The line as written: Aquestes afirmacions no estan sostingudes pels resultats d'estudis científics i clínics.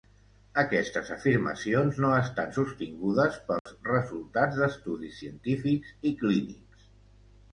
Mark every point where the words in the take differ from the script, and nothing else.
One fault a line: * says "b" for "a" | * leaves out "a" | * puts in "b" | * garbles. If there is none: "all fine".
all fine